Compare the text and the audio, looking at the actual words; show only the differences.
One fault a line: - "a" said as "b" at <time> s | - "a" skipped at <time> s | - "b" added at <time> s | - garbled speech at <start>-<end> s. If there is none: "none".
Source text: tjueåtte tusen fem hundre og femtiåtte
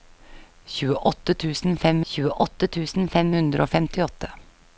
- "tjueåtte tusen fem" added at 2.1 s